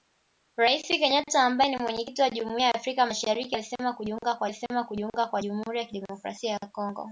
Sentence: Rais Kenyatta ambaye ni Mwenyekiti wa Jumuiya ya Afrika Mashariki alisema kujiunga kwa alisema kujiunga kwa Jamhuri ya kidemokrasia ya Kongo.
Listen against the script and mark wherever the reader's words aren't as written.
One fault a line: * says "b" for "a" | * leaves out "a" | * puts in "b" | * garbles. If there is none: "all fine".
all fine